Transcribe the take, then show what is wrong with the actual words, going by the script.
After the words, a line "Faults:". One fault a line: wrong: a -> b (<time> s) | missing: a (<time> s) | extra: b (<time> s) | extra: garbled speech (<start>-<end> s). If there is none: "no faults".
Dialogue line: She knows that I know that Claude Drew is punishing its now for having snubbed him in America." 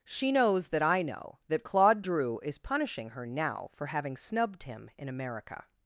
She knows that I know that Claude Drew is punishing her now for having snubbed him in America."
Faults:
wrong: its -> her (3.1 s)